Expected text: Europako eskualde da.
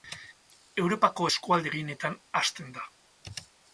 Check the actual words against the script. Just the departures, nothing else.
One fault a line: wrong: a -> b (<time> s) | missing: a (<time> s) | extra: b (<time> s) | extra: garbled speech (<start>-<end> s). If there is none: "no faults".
extra: gehienetan hazten (1.7 s)